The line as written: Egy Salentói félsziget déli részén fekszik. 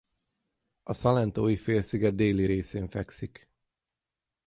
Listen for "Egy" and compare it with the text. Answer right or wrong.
wrong